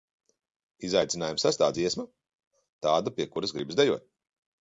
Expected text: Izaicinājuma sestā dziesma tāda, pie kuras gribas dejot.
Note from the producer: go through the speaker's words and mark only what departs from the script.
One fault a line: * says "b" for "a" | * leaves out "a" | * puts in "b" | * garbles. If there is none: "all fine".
all fine